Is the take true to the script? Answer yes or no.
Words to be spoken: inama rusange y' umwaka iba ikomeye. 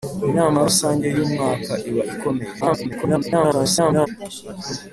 no